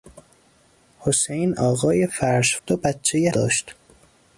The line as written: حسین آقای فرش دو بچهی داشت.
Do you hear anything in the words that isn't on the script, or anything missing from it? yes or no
no